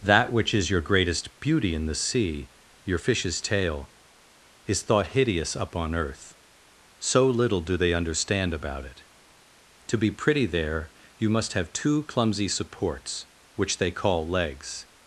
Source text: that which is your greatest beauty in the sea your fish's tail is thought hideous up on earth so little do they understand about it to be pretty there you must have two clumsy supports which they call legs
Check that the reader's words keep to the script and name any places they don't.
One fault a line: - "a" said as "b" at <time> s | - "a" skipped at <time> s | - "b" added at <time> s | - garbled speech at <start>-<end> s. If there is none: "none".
none